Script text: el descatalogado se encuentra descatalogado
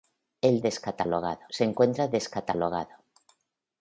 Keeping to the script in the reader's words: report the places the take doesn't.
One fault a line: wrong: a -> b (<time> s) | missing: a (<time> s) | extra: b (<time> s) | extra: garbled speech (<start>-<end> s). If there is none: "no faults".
no faults